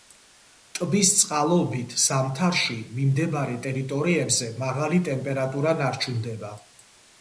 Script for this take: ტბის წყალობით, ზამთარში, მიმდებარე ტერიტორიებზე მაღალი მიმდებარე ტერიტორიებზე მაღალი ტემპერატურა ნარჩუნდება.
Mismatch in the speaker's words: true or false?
true